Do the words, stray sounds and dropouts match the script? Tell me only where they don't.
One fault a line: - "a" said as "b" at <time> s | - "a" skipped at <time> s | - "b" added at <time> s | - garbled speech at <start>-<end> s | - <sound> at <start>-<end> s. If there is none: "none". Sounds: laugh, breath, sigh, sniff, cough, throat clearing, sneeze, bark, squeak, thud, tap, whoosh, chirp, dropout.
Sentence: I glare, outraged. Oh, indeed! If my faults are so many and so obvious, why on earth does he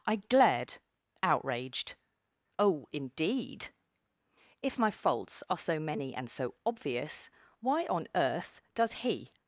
- "glare" said as "glared" at 0.1 s